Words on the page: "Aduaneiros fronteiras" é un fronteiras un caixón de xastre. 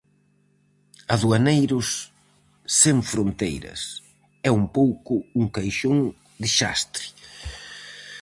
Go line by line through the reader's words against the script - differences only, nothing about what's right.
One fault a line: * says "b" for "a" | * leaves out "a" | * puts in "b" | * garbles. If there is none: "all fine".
* puts in "sen"
* says "pouco" for "fronteiras"